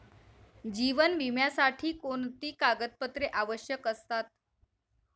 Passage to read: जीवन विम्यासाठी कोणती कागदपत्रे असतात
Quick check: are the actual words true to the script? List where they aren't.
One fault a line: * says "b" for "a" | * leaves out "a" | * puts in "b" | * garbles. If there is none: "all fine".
* puts in "आवश्यक"